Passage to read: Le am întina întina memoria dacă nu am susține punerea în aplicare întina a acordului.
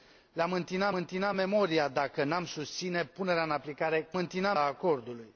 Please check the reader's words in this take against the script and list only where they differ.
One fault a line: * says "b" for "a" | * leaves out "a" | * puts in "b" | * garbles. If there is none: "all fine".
all fine